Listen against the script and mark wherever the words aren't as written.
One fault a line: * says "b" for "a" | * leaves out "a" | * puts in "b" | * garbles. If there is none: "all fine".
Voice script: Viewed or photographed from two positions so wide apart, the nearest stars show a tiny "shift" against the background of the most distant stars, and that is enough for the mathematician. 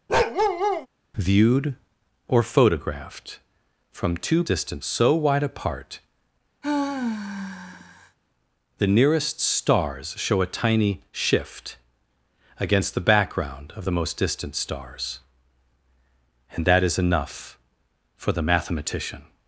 * says "distant" for "positions"